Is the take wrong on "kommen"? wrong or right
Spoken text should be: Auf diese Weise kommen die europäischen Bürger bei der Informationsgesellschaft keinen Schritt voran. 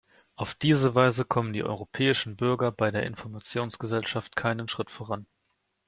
right